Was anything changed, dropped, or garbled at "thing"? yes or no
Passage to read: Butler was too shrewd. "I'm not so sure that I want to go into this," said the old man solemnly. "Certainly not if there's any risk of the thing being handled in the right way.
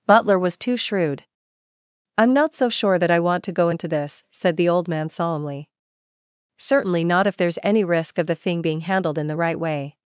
no